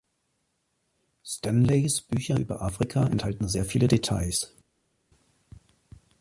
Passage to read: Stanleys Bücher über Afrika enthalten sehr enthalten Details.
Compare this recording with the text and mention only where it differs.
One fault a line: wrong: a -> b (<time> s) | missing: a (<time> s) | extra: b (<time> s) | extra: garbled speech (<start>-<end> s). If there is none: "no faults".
wrong: enthalten -> viele (3.6 s)